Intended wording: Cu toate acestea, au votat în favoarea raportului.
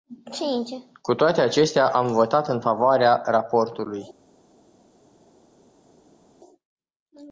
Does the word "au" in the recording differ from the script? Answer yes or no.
yes